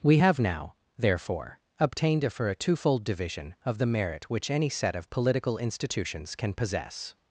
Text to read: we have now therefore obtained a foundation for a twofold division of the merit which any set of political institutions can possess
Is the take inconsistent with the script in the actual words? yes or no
yes